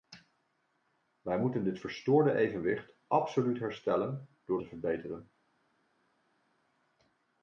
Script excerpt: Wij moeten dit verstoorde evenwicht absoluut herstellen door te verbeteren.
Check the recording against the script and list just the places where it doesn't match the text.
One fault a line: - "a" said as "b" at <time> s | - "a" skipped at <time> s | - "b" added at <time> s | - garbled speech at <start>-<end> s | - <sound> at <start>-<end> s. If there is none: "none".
none